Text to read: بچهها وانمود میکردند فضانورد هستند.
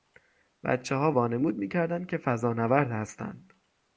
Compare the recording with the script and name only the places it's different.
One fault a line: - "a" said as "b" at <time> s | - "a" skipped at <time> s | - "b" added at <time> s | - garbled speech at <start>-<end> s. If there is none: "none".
- "که" added at 2.1 s